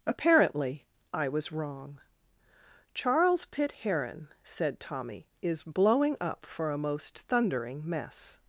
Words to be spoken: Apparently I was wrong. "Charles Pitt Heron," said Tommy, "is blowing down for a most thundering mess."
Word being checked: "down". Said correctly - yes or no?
no